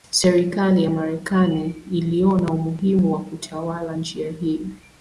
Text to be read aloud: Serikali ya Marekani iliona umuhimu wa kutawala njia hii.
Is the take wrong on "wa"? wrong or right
right